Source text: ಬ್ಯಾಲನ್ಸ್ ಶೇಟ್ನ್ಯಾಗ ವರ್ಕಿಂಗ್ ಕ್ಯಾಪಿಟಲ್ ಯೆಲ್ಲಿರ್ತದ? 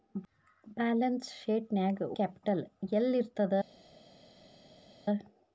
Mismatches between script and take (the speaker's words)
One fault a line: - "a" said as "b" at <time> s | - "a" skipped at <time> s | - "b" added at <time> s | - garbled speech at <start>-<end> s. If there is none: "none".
- "ವರ್ಕಿಂಗ್" skipped at 2.1 s